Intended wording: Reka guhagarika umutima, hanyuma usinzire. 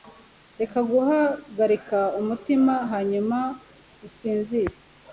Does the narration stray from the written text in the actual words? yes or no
no